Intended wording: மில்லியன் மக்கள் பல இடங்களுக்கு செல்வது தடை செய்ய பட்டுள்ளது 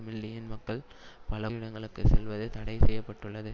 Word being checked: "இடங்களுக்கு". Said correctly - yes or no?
yes